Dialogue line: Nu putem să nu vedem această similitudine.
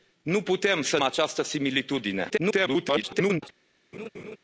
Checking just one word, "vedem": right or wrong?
wrong